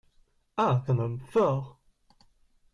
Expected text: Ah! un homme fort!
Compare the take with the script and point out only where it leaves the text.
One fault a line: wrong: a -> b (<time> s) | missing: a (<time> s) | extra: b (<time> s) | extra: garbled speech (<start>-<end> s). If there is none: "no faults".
no faults